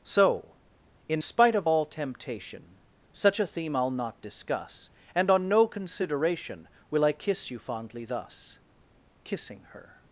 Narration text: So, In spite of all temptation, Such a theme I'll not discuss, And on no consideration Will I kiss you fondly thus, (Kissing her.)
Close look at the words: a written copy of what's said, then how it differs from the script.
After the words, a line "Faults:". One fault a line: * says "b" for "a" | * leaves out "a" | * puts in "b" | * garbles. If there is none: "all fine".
So, In spite of all temptation, Such a theme I'll not discuss, And on no consideration Will I kiss you fondly thus, (Kissing her.)
Faults:
all fine